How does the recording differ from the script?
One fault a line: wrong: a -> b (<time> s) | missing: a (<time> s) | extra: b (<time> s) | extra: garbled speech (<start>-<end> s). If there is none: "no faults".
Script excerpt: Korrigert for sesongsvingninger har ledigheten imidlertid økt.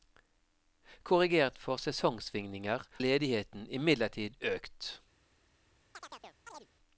missing: har (2.9 s)